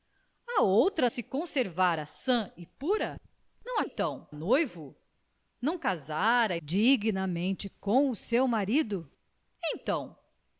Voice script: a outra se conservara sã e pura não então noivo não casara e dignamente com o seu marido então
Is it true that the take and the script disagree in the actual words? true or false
false